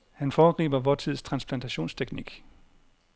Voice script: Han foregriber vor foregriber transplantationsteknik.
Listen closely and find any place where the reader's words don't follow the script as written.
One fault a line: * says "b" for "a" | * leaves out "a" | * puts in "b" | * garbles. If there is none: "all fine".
* says "tids" for "foregriber"